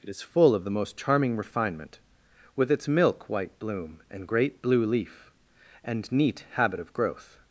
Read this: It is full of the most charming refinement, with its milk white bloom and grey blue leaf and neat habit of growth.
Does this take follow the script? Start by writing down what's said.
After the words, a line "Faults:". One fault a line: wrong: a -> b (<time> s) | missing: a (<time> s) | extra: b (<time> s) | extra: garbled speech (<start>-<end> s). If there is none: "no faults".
It is full of the most charming refinement, with its milk white bloom and great blue leaf and neat habit of growth.
Faults:
wrong: grey -> great (4.3 s)